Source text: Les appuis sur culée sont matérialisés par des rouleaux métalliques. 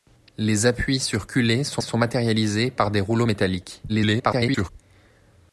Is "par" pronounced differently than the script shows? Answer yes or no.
no